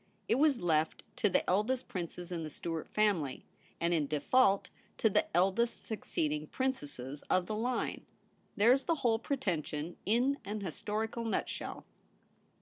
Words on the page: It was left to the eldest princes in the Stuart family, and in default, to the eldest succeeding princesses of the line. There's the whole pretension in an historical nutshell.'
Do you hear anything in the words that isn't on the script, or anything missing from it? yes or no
no